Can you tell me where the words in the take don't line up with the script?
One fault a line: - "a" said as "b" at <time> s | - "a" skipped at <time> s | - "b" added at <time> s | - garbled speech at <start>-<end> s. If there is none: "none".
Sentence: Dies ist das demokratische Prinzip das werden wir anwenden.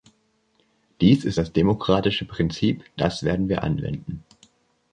none